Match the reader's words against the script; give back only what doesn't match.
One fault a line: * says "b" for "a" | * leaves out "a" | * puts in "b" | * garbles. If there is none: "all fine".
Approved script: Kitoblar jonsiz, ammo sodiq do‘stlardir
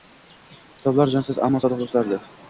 all fine